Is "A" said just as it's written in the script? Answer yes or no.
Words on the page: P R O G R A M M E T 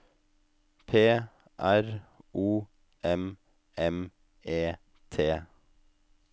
no